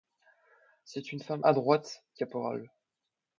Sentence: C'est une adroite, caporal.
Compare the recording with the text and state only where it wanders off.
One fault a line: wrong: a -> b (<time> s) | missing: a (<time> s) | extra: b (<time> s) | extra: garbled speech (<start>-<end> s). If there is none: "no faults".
extra: femme (1.2 s)